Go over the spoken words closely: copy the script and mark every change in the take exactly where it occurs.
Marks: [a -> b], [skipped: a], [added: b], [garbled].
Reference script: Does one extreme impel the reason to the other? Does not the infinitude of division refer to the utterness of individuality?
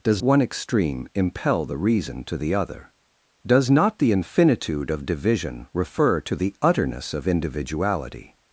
Does one extreme impel the reason to the other? Does not the infinitude of division refer to the utterness of individuality?